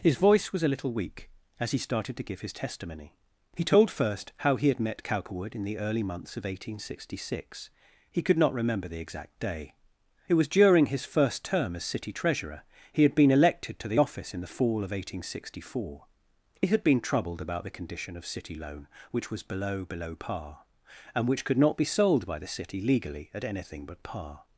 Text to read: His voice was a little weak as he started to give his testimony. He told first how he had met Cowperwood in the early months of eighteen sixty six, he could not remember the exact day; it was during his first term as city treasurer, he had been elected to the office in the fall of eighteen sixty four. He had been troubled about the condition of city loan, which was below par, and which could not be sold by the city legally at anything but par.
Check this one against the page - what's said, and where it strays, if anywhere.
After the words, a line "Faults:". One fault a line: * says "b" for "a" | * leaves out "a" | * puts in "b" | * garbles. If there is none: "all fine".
His voice was a little weak as he started to give his testimony. He told first how he had met Cowperwood in the early months of eighteen sixty six, he could not remember the exact day; it was during his first term as city treasurer, he had been elected to the office in the fall of eighteen sixty four. He had been troubled about the condition of city loan, which was below below par, and which could not be sold by the city legally at anything but par.
Faults:
* puts in "below"